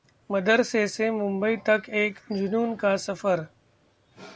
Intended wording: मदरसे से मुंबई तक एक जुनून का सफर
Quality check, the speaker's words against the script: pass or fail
pass